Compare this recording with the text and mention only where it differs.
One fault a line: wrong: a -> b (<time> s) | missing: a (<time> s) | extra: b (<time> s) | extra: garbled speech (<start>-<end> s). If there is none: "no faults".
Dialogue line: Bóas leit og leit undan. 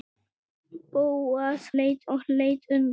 no faults